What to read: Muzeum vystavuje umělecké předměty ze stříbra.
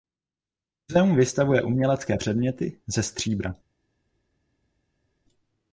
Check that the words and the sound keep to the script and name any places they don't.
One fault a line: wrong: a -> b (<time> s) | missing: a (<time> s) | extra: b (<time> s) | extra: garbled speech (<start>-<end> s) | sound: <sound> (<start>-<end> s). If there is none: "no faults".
no faults